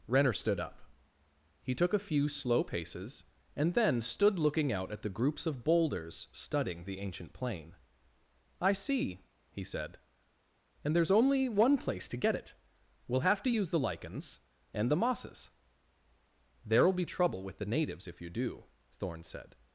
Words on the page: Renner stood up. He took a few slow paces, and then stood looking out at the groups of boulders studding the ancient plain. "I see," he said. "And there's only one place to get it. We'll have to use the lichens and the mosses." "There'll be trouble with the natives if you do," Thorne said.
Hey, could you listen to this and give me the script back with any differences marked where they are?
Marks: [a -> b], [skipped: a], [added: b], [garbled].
Renner stood up. He took a few slow paces, and then stood looking out at the groups of boulders studding the ancient plain. "I see," he said. "And there's only one place to get it. We'll have to use the lichens and the mosses." "There'll be trouble with the natives if you do," Thorne said.